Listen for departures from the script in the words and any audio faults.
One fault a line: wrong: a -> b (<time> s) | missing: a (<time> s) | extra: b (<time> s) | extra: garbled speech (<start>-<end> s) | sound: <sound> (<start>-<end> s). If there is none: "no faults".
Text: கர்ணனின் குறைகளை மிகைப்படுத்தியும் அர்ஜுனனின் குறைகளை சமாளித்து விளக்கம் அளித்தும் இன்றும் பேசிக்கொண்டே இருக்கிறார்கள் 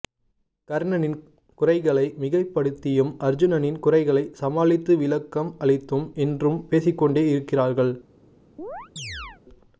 sound: chirp (8.6-9.4 s)